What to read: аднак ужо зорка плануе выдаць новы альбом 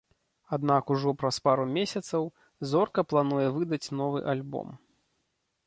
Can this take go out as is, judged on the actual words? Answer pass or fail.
fail